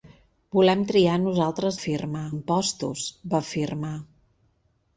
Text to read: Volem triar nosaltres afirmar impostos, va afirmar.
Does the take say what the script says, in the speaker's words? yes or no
yes